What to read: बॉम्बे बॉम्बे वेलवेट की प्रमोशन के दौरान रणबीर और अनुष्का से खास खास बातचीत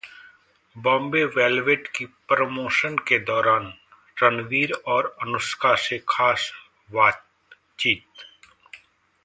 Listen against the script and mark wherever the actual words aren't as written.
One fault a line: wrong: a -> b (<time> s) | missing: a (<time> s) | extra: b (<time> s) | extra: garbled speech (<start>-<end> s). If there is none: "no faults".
missing: बॉम्बे (1.2 s)
missing: खास (6.5 s)